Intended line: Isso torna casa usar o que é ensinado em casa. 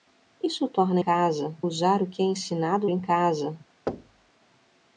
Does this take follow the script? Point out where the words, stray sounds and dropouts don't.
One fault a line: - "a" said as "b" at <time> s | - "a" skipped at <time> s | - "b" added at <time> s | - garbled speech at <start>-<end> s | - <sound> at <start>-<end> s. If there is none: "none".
- thud at 3.9-4.3 s